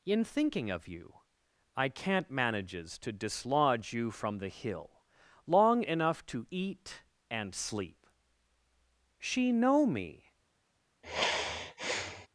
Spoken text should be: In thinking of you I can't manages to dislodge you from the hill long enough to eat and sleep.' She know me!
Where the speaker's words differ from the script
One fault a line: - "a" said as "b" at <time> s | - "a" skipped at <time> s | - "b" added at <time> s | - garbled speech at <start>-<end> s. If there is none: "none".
none